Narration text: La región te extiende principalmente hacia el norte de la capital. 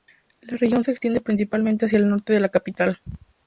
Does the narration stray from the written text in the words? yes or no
yes